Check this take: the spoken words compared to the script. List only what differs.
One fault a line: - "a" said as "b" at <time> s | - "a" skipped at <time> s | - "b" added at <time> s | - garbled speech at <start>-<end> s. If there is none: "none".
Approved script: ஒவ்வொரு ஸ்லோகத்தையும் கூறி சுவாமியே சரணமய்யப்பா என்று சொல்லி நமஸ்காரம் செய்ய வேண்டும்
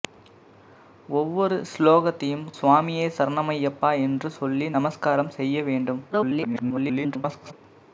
- "கூறி" skipped at 2.5 s
- garbled speech at 6.1-7.5 s